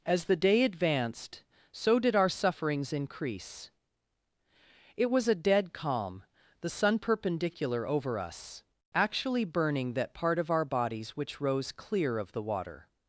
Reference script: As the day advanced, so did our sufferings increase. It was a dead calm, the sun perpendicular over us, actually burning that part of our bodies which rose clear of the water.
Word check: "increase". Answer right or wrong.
right